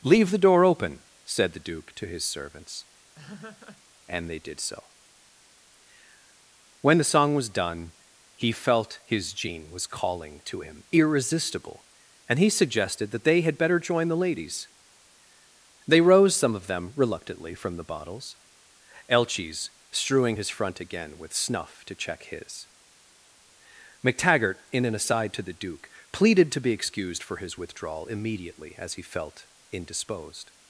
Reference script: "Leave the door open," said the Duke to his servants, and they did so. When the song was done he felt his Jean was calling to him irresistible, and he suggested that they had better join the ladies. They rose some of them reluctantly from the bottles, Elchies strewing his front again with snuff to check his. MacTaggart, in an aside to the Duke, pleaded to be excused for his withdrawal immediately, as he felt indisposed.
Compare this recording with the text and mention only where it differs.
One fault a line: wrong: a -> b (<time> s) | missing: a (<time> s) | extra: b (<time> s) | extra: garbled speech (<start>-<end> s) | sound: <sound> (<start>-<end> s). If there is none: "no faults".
sound: laugh (3.2-3.8 s)